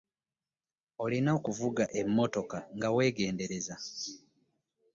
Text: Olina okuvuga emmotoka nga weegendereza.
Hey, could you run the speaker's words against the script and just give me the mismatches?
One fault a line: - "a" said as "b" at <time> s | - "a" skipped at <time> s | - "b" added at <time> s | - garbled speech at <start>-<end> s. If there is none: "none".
none